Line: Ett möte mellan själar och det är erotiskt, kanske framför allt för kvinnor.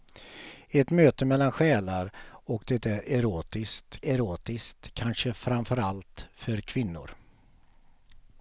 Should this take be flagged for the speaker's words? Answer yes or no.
yes